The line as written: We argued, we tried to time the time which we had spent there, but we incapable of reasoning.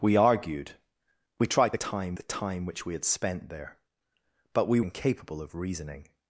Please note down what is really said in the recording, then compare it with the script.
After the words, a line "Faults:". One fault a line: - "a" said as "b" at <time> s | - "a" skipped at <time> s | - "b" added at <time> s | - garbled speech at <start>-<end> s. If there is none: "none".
We argued, we tried to time the time which we had spent there, but we incapable of reasoning.
Faults:
none